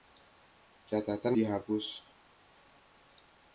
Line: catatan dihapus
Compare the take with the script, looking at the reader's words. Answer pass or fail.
pass